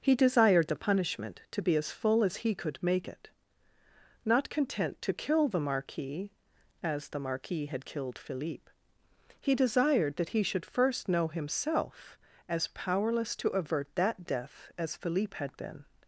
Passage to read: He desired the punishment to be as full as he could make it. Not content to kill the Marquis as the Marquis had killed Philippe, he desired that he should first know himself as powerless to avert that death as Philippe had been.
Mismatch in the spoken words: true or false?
false